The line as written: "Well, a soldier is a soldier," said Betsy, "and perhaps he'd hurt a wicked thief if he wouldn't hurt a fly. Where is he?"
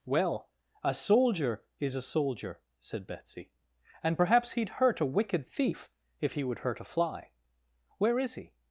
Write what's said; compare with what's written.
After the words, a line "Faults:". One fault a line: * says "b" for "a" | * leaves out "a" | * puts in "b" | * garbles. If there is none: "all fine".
"Well, a soldier is a soldier," said Betsy, "and perhaps he'd hurt a wicked thief if he would hurt a fly. Where is he?"
Faults:
* says "would" for "wouldn't"